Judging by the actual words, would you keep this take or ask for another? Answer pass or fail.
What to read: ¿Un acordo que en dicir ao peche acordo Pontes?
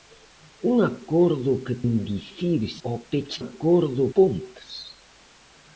pass